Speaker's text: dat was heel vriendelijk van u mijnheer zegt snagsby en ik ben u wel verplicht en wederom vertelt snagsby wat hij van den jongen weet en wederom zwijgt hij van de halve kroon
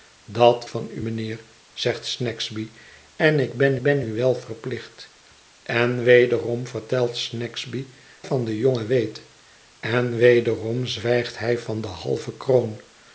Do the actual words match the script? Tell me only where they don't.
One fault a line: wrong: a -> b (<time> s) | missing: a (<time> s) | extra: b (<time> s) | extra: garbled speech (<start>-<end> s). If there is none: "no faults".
missing: was heel vriendelijk (0.7 s)
extra: ben (3.8 s)
missing: wat hij (7.9 s)